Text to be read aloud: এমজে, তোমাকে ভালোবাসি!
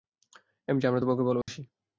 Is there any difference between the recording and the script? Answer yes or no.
yes